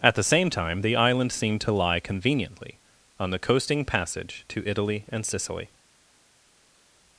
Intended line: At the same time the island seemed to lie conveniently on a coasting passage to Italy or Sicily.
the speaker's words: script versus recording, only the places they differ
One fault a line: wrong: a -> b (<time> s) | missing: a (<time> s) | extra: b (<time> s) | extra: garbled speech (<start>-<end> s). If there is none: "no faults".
wrong: a -> the (3.3 s)
wrong: or -> and (5.1 s)